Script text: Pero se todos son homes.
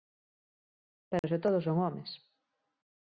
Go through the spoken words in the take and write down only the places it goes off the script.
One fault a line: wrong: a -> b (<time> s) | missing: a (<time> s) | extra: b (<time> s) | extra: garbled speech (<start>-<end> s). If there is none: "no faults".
no faults